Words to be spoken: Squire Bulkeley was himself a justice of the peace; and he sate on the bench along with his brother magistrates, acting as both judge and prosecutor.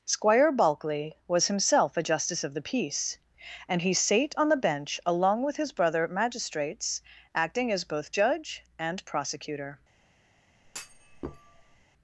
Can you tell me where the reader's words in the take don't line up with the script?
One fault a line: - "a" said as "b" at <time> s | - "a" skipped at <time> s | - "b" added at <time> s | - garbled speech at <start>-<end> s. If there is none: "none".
none